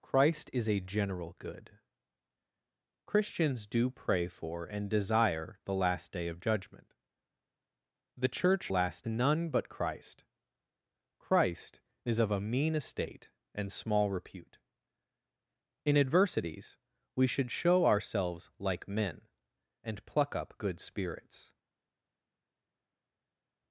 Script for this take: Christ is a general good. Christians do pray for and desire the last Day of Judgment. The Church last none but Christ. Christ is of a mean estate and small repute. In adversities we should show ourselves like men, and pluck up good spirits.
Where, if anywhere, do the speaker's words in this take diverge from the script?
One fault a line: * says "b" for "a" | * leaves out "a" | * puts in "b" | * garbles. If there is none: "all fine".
all fine